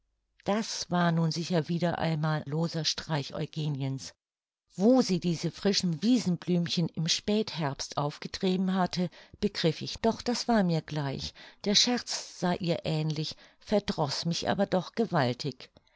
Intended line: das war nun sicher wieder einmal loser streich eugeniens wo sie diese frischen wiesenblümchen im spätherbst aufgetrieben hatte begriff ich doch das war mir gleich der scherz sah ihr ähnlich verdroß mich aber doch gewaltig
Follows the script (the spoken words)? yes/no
yes